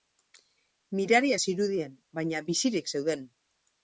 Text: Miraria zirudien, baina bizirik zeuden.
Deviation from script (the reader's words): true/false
false